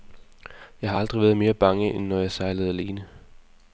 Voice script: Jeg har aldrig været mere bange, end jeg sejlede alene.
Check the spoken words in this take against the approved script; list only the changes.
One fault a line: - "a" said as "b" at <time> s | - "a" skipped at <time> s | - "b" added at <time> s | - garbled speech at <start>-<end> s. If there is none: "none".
- "når" added at 2.1 s